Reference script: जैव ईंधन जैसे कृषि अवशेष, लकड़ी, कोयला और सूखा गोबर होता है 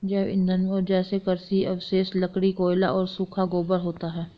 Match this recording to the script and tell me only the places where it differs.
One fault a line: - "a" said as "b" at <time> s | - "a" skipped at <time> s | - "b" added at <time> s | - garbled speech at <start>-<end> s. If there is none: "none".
none